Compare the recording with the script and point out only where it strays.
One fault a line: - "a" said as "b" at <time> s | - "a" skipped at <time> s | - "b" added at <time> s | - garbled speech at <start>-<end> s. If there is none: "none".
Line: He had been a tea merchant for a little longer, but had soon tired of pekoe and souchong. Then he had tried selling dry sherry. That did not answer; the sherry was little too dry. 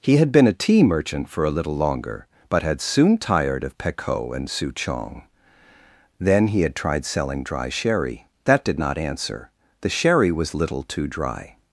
none